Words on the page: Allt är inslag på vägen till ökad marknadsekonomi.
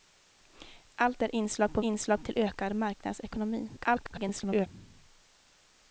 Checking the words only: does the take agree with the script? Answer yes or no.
no